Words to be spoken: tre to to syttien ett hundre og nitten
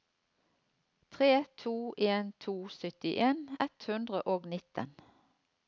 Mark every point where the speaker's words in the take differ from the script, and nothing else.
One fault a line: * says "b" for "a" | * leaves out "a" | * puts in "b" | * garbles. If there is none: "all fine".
* puts in "en"